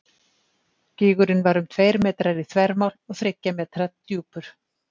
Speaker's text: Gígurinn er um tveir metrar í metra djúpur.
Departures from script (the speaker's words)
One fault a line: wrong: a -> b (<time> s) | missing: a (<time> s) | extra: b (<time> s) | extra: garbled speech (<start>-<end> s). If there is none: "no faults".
wrong: er -> var (1.5 s)
extra: þvermál og þriggja (2.5 s)